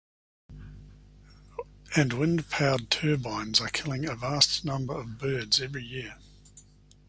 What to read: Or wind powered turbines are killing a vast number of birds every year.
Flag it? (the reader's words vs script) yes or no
yes